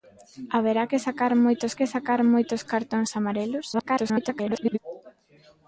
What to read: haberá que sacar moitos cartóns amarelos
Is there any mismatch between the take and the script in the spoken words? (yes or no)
yes